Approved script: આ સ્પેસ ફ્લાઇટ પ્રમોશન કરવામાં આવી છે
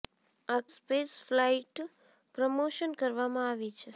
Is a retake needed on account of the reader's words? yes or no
no